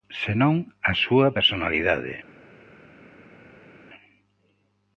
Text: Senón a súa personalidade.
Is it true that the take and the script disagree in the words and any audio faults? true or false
false